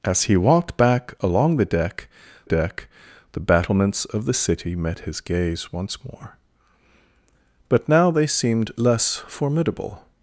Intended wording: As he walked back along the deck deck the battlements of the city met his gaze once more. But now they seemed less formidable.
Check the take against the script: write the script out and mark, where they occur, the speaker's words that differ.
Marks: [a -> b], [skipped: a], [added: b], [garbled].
As he walked back along the deck deck the battlements of the city met his gaze once more. But now they seemed less formidable.